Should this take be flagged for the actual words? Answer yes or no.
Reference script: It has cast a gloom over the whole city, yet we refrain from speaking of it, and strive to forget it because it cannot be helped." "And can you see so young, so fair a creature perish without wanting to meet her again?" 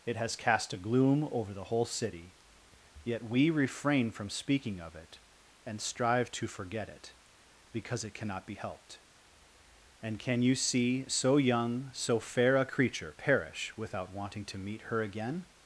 no